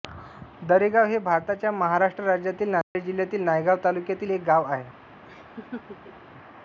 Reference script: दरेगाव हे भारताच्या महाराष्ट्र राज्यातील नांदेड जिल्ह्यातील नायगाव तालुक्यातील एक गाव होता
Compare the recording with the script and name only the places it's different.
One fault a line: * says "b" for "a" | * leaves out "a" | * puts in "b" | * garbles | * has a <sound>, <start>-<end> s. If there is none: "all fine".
* has a dropout, 2.8-2.9 s
* says "आहे" for "होता"
* has a laugh, 5.2-6.3 s